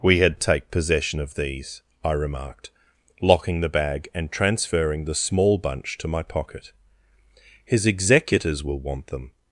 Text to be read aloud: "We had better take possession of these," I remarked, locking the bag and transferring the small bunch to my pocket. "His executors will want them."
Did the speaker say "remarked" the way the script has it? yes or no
yes